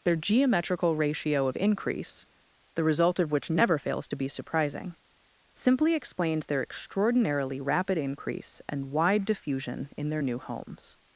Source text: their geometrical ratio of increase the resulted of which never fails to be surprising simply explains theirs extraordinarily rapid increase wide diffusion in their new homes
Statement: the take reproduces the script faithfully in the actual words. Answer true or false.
false